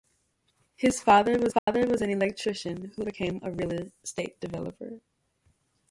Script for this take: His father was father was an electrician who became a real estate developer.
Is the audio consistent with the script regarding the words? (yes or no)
yes